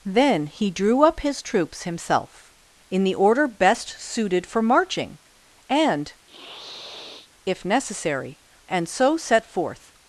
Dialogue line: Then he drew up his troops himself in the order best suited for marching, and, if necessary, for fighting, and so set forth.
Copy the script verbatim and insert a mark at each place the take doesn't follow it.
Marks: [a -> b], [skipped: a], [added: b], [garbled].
Then he drew up his troops himself in the order best suited for marching, and, if necessary, [skipped: for fighting,] and so set forth.